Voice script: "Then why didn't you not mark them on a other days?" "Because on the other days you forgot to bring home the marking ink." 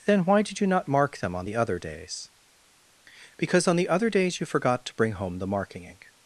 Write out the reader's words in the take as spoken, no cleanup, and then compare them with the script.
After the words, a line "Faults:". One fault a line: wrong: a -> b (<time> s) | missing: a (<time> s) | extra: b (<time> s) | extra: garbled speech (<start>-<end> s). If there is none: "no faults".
"Then why did you not mark them on the other days?" "Because on the other days you forgot to bring home the marking ink."
Faults:
wrong: didn't -> did (0.4 s)
wrong: a -> the (1.4 s)